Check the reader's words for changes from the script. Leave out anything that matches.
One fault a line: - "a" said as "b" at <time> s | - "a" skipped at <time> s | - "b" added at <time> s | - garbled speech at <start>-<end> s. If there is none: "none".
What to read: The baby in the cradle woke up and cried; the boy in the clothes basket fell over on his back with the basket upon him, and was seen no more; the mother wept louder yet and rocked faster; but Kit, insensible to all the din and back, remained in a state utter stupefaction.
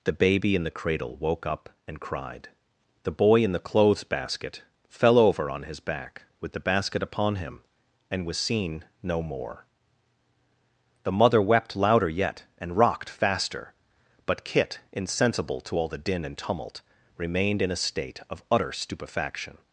- "back" said as "tumult" at 16.4 s
- "of" added at 18.3 s